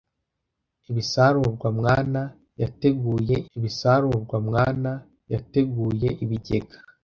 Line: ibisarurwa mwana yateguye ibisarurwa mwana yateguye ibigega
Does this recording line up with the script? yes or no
yes